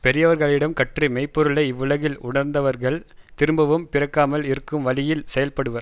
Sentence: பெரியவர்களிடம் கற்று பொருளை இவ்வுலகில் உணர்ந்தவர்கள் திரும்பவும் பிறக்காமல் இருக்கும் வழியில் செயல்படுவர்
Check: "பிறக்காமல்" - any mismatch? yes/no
no